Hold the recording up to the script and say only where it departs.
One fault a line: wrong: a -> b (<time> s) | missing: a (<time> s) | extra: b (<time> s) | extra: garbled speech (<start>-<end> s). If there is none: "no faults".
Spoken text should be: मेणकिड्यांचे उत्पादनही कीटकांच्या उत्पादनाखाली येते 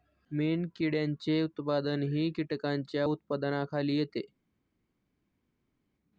no faults